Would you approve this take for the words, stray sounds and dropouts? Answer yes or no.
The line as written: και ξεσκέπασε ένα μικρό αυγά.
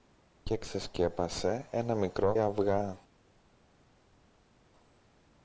yes